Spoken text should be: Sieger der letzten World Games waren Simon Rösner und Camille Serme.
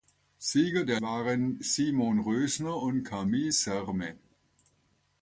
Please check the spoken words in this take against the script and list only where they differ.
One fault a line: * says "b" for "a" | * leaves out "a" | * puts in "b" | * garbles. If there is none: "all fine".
* leaves out "letzten World Games"